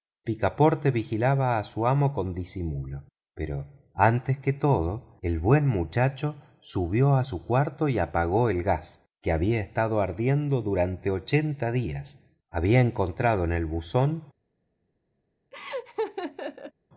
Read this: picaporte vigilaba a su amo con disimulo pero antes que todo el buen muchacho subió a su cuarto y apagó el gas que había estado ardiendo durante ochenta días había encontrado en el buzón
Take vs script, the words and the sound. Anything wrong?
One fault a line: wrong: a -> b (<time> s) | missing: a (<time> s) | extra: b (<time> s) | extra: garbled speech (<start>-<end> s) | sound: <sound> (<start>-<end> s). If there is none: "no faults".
sound: laugh (15.5-16.7 s)